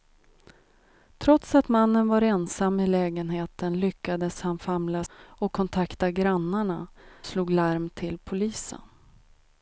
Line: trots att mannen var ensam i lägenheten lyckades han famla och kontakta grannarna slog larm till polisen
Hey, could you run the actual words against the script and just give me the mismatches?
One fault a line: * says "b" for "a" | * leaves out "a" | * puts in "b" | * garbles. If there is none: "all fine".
all fine